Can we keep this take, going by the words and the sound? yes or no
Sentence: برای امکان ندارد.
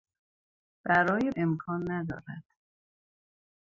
yes